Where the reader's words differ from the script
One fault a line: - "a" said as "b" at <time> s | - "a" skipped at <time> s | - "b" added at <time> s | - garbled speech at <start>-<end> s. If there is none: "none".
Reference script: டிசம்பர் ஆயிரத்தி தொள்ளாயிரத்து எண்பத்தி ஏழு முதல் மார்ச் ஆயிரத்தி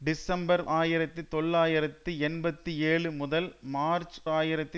none